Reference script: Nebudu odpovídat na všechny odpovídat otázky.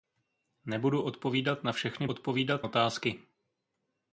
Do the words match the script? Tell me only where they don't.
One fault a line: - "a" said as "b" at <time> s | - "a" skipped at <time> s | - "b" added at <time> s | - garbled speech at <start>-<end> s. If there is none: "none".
none